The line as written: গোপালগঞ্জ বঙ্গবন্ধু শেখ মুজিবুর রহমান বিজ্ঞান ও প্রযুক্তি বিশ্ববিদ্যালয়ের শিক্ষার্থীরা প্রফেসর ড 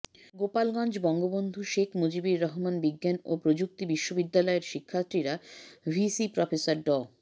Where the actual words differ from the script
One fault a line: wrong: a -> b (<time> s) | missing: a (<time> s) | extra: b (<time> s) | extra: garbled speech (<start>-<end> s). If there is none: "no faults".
extra: ভিসি (5.9 s)